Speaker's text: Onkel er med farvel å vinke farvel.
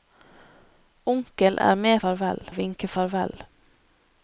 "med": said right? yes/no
yes